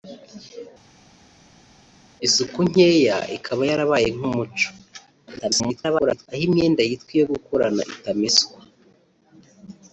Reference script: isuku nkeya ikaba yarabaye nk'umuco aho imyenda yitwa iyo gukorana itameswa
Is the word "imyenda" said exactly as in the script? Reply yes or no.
yes